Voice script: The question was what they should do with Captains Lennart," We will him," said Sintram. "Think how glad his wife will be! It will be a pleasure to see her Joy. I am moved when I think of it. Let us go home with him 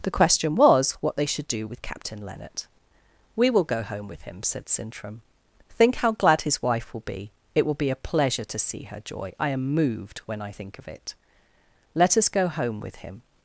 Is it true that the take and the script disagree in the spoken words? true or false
true